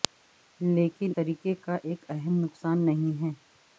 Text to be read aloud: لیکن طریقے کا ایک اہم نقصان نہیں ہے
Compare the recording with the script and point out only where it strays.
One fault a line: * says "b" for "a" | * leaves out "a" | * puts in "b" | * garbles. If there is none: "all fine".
all fine